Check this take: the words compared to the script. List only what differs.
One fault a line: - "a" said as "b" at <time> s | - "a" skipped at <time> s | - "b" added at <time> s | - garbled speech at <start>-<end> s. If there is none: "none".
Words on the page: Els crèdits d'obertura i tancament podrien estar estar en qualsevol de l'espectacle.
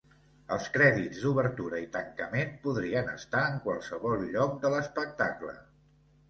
- "estar" skipped at 3.4 s
- "lloc" added at 4.4 s